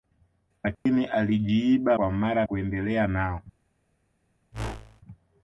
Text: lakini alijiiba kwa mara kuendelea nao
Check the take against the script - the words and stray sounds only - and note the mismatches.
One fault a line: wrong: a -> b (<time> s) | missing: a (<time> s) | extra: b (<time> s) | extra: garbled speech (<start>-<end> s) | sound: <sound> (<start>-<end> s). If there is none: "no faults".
sound: dropout (0.7-0.9 s)
sound: whoosh (4.5-5.0 s)